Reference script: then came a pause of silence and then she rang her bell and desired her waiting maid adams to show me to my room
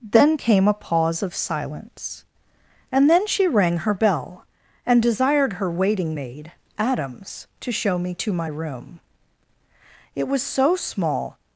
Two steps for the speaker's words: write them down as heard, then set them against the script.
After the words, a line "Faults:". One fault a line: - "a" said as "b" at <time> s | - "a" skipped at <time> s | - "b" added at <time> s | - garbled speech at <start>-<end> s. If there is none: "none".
then came a pause of silence and then she rang her bell and desired her waiting maid adams to show me to my room it was so small
Faults:
- "it was so small" added at 10.1 s